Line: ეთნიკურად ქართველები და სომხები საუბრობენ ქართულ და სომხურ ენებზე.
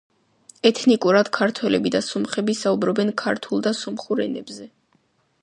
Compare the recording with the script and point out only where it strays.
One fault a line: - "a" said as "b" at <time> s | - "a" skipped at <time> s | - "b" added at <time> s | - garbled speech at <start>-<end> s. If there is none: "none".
none